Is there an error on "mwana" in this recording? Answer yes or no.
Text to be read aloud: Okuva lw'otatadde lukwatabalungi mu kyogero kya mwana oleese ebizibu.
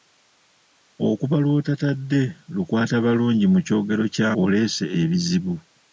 yes